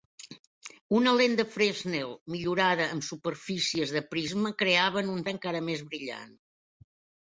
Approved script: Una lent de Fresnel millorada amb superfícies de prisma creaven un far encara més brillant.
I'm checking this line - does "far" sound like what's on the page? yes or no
no